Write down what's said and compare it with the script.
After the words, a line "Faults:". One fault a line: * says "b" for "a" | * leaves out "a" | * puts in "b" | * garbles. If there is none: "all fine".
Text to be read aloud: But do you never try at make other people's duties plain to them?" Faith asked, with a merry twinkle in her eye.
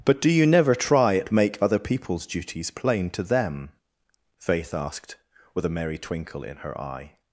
But do you never try at make other people's duties plain to them?" Faith asked, with a merry twinkle in her eye.
Faults:
all fine